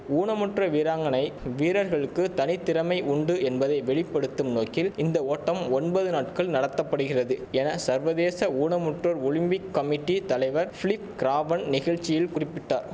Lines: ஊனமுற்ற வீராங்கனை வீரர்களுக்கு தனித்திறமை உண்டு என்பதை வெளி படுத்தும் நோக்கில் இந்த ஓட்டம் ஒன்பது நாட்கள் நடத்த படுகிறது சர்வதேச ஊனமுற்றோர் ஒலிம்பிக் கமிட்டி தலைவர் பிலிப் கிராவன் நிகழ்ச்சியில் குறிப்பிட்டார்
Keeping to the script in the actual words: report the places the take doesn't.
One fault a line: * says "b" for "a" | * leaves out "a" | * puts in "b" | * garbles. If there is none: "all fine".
* puts in "என"